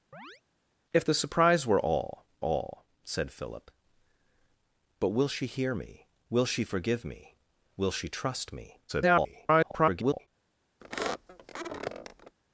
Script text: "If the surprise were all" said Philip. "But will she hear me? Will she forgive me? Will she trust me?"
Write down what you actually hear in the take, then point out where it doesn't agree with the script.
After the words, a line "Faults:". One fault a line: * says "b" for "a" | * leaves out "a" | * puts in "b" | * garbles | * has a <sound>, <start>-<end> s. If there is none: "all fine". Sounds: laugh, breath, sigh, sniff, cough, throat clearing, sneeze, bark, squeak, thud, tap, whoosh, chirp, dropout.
"If the surprise were all all" said Philip. "But will she hear me? Will she forgive me? Will she trust me?" [garbled]
Faults:
* has a chirp, 0.1-0.4 s
* puts in "all"
* garbles
* has a squeak, 10.8-12.4 s